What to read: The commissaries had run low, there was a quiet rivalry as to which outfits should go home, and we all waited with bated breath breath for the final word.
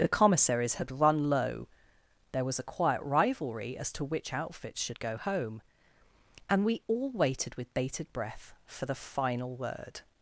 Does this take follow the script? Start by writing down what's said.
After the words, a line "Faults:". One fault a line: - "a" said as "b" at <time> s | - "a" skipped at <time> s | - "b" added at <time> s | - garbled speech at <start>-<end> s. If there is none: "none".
The commissaries had run low, there was a quiet rivalry as to which outfits should go home, and we all waited with bated breath for the final word.
Faults:
- "breath" skipped at 8.5 s